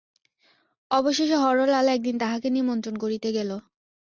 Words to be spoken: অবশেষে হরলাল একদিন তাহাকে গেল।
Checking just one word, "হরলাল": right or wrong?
right